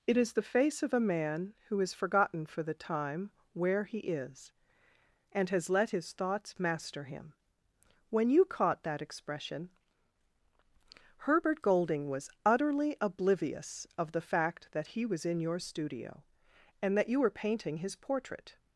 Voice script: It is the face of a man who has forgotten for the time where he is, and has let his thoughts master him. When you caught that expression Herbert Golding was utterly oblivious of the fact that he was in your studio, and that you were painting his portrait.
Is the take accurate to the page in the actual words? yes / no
yes